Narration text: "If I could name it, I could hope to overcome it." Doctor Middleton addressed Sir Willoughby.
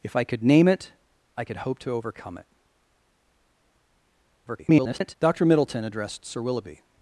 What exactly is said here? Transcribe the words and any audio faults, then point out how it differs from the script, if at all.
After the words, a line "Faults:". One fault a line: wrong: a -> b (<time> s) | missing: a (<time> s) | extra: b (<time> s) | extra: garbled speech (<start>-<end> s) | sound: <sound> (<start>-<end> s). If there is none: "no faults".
"If I could name it, I could hope to overcome it." [garbled] Doctor Middleton addressed Sir Willoughby.
Faults:
extra: garbled speech (4.5-5.1 s)